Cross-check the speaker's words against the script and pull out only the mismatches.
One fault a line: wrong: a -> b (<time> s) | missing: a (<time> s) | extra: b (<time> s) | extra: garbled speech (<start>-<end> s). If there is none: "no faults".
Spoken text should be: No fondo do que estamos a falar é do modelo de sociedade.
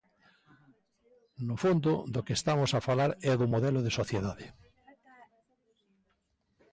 no faults